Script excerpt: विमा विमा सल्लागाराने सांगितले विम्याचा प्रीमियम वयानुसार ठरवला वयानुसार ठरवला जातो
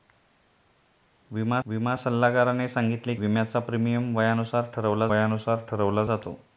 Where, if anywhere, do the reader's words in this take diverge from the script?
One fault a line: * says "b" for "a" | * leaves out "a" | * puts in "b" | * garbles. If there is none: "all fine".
all fine